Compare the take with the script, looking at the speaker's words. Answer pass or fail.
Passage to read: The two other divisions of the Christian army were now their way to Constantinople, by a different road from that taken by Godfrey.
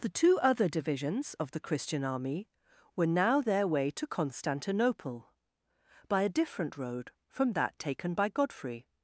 pass